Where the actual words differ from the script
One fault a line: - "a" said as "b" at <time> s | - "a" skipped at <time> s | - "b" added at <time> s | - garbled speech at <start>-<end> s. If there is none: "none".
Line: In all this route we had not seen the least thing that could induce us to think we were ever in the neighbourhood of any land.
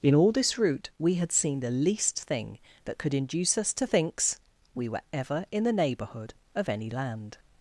- "not" skipped at 1.3 s
- "think" said as "thinks" at 3.8 s